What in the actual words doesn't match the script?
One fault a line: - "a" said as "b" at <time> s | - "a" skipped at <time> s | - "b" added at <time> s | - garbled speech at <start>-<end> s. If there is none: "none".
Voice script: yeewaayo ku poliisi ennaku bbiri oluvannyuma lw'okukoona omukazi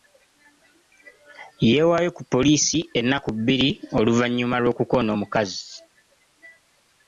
none